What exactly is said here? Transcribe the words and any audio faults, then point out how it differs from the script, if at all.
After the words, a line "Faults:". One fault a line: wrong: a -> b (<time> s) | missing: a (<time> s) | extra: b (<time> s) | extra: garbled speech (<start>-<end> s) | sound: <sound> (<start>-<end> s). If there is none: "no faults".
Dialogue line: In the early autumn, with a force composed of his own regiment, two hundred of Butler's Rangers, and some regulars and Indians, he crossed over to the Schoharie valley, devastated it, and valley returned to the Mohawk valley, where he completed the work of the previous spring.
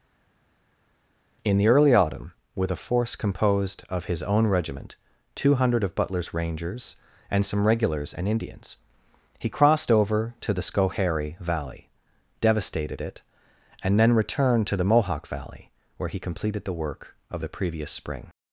In the early autumn, with a force composed of his own regiment, two hundred of Butler's Rangers, and some regulars and Indians, he crossed over to the Schoharie valley, devastated it, and then returned to the Mohawk valley, where he completed the work of the previous spring.
Faults:
wrong: valley -> then (14.0 s)